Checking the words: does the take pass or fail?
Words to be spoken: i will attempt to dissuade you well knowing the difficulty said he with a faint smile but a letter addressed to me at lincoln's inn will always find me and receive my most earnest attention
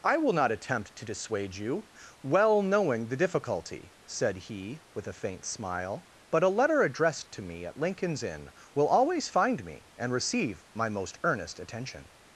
fail